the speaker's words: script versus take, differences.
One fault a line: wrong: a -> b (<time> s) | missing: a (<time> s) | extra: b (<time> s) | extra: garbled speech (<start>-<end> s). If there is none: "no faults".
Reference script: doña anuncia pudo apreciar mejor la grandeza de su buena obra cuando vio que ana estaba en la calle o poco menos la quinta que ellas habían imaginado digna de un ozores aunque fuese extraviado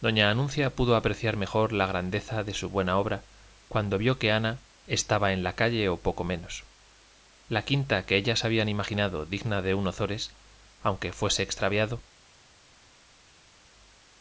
no faults